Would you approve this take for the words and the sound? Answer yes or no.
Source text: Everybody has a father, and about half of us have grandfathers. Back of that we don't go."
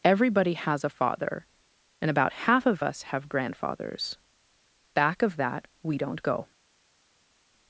yes